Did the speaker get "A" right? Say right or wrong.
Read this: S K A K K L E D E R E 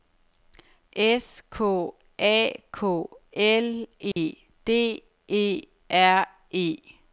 right